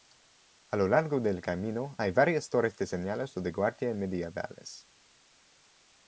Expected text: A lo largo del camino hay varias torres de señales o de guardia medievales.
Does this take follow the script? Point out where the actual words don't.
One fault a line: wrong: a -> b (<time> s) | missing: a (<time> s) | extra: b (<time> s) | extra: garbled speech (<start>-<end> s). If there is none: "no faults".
no faults